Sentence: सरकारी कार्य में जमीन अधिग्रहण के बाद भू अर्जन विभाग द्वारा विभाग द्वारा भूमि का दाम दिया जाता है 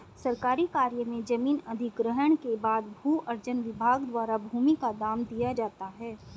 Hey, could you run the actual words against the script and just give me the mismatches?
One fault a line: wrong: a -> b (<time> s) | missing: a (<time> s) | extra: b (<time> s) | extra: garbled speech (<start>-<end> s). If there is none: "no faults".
missing: विभाग द्वारा (4.4 s)